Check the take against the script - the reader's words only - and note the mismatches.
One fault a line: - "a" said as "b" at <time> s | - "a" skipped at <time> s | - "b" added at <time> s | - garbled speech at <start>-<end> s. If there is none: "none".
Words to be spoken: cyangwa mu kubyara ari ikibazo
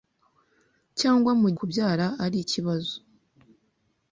none